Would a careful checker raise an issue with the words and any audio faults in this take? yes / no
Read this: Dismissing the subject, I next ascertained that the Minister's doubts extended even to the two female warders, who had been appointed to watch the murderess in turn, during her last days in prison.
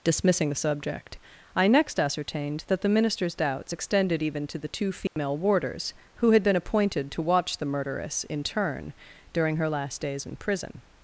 yes